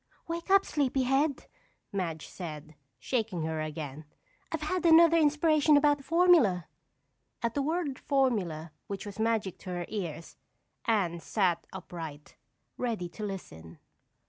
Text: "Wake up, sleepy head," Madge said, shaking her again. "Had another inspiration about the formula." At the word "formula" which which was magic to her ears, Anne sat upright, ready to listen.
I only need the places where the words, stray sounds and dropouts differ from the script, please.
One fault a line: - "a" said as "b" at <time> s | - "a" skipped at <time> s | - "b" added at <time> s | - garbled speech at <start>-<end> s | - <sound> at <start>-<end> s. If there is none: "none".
- "I've" added at 4.5 s
- "which" skipped at 9.0 s